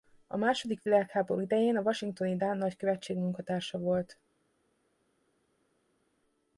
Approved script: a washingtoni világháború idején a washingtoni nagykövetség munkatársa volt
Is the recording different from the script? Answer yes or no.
yes